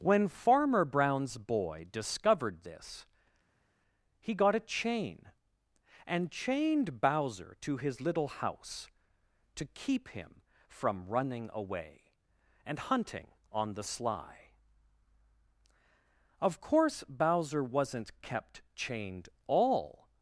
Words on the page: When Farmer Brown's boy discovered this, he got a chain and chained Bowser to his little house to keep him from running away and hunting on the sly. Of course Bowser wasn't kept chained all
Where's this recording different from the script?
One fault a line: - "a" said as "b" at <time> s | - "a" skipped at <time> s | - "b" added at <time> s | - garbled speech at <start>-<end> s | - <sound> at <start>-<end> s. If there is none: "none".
none